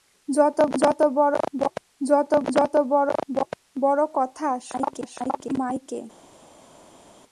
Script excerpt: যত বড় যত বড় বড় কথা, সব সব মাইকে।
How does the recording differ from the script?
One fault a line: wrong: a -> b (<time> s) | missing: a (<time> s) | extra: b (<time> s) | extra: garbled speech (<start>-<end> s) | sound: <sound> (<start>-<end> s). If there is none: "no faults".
no faults